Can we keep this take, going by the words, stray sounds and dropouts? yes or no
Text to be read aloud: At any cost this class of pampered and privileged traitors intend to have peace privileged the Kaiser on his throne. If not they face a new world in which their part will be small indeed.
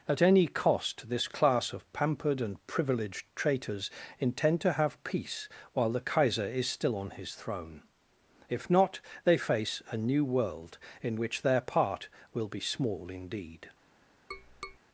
no